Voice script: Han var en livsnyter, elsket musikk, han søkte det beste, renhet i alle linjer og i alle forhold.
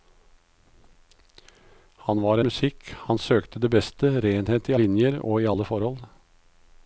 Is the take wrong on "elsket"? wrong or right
wrong